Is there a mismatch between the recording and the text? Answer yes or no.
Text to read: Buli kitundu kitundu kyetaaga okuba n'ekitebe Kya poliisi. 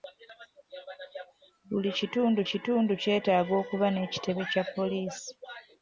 no